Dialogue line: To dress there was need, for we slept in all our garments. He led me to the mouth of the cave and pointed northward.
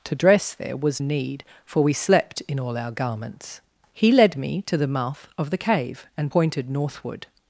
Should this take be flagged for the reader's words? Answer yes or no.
no